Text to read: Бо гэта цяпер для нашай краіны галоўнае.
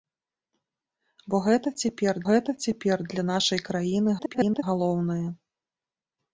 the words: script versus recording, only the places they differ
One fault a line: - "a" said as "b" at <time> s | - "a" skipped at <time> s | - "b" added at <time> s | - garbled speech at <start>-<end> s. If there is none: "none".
- "гэта цяпер" added at 2.3 s
- garbled speech at 4.2-4.6 s